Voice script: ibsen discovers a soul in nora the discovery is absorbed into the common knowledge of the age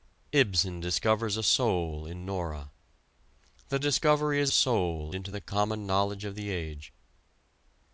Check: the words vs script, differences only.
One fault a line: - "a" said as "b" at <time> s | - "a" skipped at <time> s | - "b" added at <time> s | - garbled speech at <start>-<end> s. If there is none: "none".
- "absorbed" said as "soul" at 4.5 s